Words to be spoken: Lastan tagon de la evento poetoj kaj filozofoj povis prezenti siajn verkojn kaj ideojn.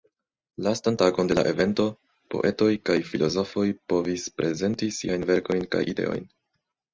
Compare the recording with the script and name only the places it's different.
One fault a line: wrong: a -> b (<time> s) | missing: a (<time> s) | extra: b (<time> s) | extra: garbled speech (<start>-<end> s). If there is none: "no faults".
no faults